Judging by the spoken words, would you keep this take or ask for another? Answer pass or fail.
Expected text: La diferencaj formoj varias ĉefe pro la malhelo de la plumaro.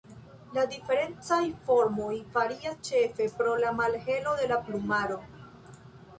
pass